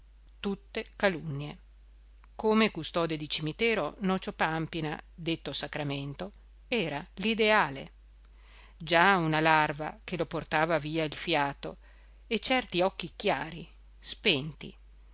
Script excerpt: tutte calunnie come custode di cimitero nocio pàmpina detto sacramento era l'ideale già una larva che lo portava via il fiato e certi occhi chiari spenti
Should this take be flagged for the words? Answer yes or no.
no